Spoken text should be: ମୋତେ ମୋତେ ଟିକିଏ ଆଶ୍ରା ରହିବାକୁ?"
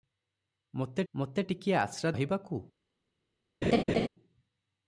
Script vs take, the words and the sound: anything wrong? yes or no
yes